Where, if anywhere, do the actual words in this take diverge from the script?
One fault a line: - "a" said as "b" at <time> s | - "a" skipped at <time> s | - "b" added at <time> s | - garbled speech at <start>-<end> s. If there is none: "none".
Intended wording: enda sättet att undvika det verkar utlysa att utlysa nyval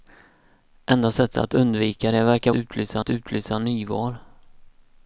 none